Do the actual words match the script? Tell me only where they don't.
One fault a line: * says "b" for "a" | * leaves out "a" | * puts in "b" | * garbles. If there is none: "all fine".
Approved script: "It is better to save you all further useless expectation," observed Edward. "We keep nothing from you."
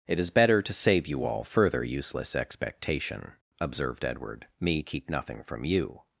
* says "Me" for "We"